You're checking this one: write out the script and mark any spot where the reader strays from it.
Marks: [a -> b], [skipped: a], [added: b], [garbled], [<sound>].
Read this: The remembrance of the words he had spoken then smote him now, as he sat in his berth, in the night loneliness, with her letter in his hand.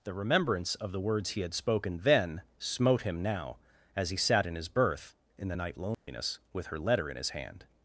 The remembrance of the words he had spoken then smote him now, as he sat in his berth, in the night loneliness, [dropout] with her letter in his hand.